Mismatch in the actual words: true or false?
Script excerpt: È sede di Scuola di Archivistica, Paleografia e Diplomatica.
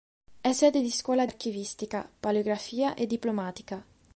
true